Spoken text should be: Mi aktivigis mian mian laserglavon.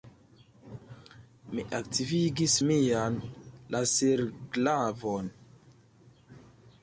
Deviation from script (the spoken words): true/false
true